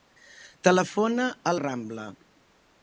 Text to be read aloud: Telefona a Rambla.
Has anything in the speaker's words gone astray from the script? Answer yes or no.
no